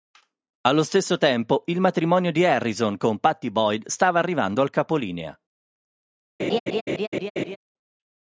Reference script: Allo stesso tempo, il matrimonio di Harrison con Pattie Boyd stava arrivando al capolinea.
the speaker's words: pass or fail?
pass